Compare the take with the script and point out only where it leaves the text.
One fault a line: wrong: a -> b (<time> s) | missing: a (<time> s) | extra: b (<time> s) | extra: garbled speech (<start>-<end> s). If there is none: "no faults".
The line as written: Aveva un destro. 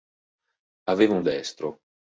no faults